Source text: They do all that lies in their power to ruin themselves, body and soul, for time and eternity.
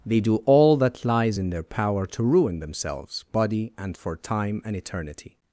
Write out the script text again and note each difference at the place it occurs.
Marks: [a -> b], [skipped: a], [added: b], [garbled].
They do all that lies in their power to ruin themselves, body and [skipped: soul,] for time and eternity.